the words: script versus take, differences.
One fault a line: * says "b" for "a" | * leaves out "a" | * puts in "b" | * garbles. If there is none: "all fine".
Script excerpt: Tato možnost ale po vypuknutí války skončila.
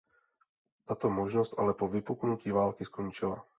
all fine